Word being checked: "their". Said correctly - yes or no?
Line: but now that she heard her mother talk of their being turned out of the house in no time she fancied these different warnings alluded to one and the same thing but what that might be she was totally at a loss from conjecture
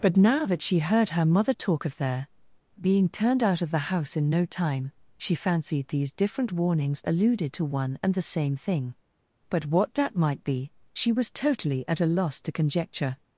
yes